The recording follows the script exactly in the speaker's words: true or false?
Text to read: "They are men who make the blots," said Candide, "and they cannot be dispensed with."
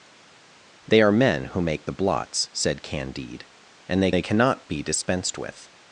false